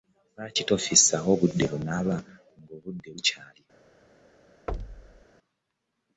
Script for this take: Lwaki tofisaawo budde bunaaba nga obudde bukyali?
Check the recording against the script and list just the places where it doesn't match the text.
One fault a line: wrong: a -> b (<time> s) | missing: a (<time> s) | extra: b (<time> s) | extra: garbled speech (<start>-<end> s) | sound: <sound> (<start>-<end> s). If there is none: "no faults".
sound: thud (4.7-5.2 s)